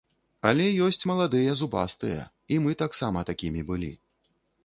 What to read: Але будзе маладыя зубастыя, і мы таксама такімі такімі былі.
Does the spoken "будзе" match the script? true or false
false